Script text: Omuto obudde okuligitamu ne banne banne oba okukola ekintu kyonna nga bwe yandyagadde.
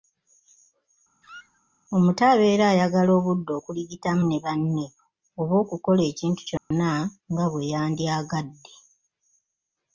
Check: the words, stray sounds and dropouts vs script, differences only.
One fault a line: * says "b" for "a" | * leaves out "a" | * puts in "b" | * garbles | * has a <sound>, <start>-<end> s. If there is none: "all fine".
* has a squeak, 1.2-1.6 s
* puts in "abeera ayagala"
* leaves out "banne"
* has a dropout, 6.6-6.7 s